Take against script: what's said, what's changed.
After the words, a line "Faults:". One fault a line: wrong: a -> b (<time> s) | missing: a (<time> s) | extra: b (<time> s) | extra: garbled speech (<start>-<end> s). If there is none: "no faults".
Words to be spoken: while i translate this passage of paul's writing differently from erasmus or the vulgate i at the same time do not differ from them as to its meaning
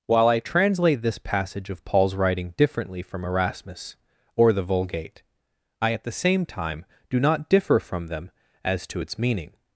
while i translate this passage of paul's writing differently from erasmus or the vulgate i at the same time do not differ from them as to its meaning
Faults:
no faults